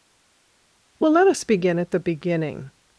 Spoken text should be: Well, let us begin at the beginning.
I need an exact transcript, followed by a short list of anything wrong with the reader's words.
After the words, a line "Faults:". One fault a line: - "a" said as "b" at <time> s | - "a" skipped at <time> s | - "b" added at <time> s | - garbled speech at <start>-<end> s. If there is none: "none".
Well, let us begin at the beginning.
Faults:
none